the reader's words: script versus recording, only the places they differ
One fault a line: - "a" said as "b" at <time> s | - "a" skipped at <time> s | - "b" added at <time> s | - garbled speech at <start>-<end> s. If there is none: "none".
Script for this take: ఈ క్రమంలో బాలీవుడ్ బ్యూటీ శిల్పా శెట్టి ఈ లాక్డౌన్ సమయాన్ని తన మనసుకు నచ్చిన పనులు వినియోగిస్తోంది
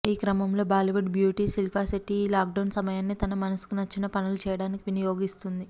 - "చేయడానికి" added at 4.4 s